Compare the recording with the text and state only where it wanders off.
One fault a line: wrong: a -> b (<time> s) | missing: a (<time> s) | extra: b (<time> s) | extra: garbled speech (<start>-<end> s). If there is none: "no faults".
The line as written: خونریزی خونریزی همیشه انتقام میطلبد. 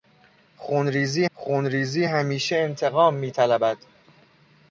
no faults